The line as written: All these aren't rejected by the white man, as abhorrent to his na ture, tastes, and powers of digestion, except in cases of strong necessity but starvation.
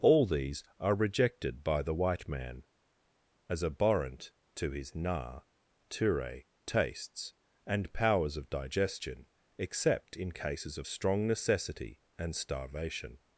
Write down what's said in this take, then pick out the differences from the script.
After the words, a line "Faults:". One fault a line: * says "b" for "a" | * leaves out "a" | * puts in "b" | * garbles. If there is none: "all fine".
All these are rejected by the white man, as abhorrent to his na ture, tastes, and powers of digestion, except in cases of strong necessity and starvation.
Faults:
* says "are" for "aren't"
* says "and" for "but"